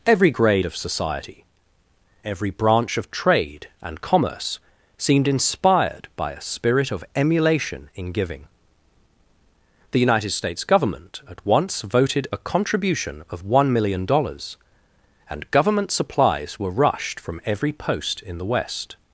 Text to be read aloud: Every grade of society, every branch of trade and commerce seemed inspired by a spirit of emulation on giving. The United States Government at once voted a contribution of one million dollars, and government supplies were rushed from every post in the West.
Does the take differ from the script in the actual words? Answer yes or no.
yes